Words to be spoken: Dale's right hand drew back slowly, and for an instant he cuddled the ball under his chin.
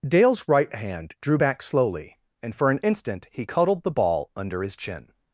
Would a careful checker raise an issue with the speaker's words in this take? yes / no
no